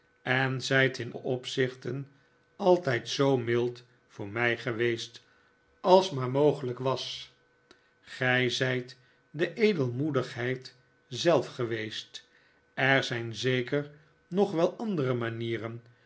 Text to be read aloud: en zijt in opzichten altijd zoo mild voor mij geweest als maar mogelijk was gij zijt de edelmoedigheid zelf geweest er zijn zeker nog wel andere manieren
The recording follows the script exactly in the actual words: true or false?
true